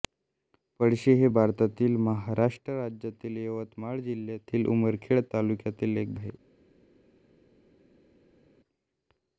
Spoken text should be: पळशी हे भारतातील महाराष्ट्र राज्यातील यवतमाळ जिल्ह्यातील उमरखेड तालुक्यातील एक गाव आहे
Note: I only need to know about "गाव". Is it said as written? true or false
false